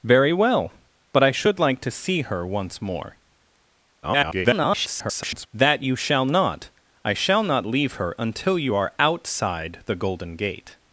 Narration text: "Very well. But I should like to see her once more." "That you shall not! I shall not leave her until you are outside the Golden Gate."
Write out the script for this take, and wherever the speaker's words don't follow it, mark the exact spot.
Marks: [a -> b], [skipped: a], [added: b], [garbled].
"Very well. But I should like to see her once more." [garbled] "That you shall not! I shall not leave her until you are outside the Golden Gate."